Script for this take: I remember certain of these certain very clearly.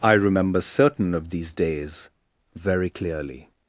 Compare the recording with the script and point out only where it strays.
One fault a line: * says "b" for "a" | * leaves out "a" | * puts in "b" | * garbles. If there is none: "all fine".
* says "days" for "certain"